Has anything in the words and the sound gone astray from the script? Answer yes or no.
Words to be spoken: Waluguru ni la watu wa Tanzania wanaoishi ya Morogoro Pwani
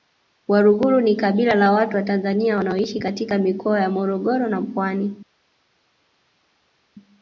yes